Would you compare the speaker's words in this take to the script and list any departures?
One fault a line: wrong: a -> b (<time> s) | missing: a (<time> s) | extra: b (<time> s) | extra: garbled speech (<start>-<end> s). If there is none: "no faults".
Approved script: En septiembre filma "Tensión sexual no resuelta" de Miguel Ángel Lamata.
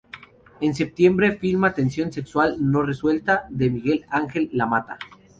no faults